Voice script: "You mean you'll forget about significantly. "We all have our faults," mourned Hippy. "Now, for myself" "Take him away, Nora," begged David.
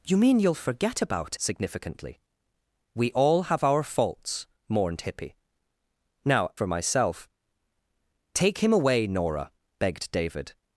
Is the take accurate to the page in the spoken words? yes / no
yes